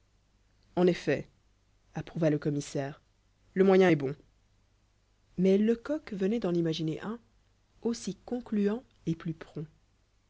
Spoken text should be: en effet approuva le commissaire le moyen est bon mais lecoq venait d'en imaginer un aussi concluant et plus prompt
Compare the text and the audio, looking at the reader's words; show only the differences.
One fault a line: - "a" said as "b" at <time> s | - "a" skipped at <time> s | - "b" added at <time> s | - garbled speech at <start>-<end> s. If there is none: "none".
none